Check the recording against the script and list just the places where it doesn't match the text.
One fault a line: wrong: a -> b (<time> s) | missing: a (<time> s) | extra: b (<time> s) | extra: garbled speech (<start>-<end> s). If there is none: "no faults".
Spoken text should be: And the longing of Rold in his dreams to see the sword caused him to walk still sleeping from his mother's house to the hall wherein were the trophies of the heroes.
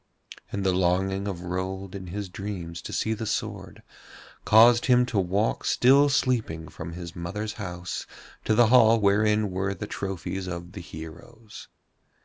no faults